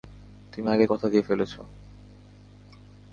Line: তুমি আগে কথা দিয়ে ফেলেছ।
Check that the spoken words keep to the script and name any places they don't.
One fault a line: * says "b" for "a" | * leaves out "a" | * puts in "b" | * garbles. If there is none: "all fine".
all fine